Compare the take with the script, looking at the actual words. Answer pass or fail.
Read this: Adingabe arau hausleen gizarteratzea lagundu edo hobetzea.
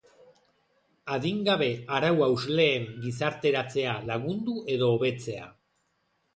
pass